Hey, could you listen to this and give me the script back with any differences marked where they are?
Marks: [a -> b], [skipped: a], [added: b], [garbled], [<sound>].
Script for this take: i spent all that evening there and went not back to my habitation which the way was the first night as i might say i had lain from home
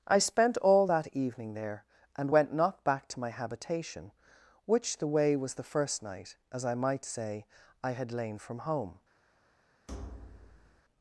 i spent all that evening there and went not back to my habitation which the way was the first night as i might say i had lain from home [thud]